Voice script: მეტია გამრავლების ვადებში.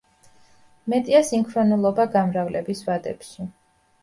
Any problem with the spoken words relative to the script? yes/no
yes